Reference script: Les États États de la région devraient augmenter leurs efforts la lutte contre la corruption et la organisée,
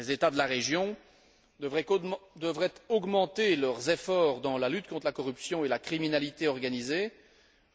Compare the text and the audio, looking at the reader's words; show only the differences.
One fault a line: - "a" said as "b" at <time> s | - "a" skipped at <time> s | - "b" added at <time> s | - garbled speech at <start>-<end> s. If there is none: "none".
- "États" skipped at 0.3 s
- "dans" added at 4.4 s
- "criminalité" added at 5.8 s